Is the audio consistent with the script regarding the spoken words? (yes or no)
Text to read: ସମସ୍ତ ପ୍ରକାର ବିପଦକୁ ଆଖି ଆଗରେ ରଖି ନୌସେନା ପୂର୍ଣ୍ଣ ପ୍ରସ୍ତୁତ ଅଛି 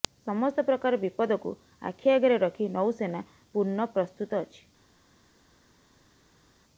yes